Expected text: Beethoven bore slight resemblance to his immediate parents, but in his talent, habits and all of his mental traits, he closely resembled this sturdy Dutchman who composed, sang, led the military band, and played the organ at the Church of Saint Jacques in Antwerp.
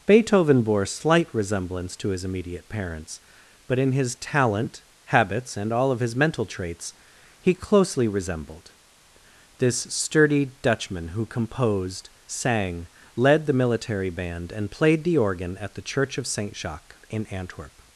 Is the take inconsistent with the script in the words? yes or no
no